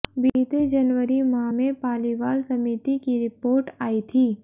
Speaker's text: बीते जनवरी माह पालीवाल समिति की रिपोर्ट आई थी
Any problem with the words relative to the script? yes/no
yes